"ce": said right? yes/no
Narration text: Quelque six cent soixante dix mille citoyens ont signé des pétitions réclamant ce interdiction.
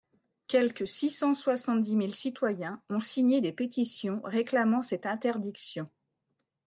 no